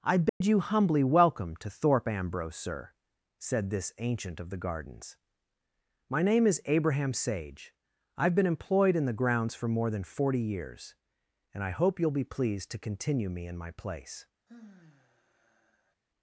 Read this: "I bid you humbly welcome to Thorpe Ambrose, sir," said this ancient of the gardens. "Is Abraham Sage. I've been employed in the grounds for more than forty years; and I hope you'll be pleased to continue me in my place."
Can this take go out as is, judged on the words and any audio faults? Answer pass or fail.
fail